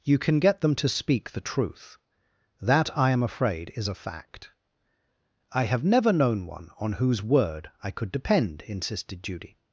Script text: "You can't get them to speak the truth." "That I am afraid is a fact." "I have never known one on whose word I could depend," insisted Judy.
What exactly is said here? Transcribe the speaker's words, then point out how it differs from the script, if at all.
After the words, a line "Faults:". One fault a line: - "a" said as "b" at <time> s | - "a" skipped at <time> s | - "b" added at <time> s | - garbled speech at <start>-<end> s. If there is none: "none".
"You can get them to speak the truth." "That I am afraid is a fact." "I have never known one on whose word I could depend," insisted Judy.
Faults:
- "can't" said as "can" at 0.2 s